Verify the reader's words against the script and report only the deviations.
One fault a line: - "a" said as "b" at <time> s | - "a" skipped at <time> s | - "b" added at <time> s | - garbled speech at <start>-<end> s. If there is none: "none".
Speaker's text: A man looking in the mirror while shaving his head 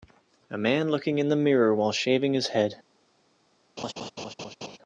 none